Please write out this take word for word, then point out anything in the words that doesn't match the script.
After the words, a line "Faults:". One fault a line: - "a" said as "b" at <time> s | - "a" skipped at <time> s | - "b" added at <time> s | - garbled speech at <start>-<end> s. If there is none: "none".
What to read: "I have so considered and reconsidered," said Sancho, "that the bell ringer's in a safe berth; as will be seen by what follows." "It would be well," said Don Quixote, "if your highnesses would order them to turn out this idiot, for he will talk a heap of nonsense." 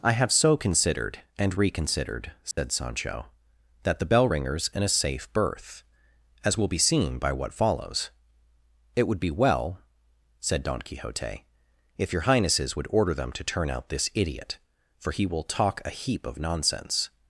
"I have so considered and reconsidered," said Sancho, "that the bell ringer's in a safe berth; as will be seen by what follows." "It would be well," said Don Quixote, "if your highnesses would order them to turn out this idiot, for he will talk a heap of nonsense."
Faults:
none